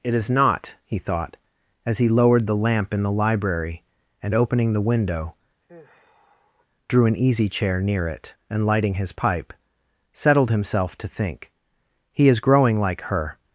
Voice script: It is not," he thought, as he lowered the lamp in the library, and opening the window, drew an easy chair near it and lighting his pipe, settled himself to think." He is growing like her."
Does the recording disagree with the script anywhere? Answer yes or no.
no